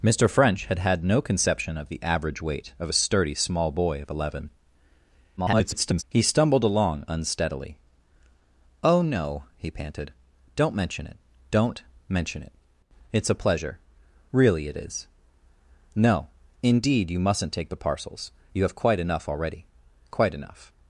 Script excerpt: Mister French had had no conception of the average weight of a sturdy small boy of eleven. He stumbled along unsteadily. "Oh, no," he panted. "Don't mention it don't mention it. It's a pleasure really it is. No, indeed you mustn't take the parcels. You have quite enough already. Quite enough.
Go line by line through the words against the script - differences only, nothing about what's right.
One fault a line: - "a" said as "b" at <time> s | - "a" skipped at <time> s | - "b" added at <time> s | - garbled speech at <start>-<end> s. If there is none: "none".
- garbled speech at 5.4-6.0 s